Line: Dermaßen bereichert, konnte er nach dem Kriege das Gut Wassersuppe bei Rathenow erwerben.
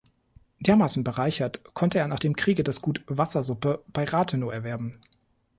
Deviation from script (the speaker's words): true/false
false